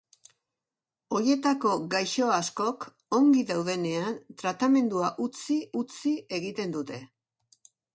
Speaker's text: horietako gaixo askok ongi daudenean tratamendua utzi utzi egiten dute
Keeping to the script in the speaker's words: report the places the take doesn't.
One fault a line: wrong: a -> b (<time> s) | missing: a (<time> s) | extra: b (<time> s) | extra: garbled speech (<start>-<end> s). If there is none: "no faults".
no faults